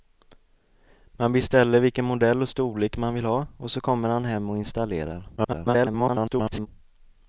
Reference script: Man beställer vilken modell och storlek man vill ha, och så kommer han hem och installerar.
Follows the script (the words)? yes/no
no